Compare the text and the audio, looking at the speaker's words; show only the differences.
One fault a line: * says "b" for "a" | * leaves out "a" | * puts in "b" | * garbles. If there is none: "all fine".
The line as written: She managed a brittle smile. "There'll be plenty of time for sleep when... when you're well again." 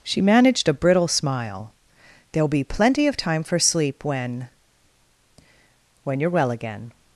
all fine